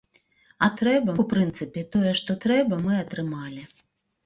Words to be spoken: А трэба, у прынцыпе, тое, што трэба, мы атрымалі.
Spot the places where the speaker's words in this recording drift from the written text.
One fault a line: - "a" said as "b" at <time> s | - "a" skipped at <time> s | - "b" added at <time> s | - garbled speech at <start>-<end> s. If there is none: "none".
none